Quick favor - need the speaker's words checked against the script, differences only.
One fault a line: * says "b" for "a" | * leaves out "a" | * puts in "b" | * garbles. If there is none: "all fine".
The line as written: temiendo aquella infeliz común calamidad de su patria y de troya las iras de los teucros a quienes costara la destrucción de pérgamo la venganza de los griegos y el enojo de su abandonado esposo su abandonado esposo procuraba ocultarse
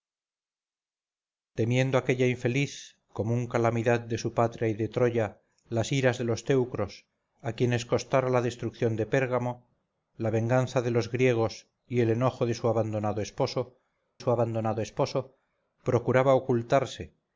all fine